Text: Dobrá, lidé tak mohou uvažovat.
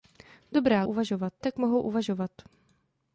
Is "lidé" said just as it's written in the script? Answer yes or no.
no